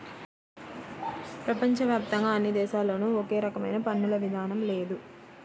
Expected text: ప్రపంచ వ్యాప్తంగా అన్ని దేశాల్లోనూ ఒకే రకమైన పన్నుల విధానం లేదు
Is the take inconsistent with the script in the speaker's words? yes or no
no